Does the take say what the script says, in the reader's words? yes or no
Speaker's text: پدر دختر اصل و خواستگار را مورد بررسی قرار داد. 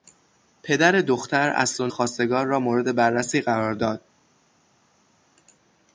yes